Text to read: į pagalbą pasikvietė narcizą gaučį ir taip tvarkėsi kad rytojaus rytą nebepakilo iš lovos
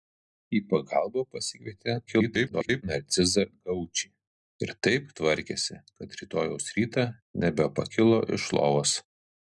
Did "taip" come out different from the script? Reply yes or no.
no